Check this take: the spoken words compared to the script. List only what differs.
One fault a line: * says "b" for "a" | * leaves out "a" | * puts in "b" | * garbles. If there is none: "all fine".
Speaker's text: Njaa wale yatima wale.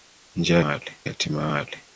all fine